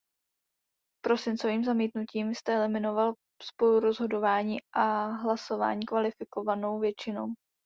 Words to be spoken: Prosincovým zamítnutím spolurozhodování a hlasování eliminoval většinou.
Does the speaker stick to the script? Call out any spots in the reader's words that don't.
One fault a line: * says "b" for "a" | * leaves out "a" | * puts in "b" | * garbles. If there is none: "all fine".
* puts in "jste eliminoval"
* says "kvalifikovanou" for "eliminoval"